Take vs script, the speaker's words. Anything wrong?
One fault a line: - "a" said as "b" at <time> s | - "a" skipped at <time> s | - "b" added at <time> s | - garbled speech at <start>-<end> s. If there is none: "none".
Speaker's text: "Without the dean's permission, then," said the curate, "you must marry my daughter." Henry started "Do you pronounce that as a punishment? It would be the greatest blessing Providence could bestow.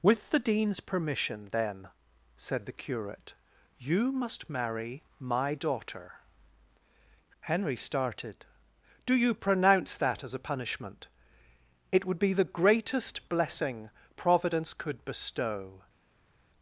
- "Without" said as "With" at 0.0 s